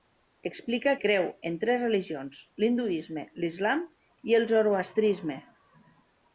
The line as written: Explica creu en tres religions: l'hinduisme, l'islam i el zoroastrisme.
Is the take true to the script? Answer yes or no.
yes